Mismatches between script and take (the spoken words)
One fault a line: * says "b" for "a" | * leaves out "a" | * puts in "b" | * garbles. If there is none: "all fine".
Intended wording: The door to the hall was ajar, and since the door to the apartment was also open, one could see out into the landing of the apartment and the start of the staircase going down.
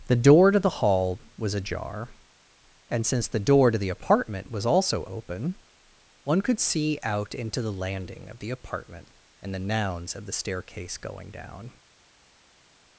* says "nouns" for "start"